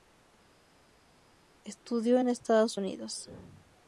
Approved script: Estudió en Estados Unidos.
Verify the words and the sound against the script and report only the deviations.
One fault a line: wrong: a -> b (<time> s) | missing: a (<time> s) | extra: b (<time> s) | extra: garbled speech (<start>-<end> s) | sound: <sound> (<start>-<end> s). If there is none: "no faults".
no faults